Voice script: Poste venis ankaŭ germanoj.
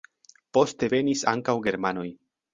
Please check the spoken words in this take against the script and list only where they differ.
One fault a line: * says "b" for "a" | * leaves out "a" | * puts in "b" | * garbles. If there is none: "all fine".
all fine